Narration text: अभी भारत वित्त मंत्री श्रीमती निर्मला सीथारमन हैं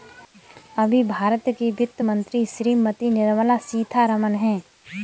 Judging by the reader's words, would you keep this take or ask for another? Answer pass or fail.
fail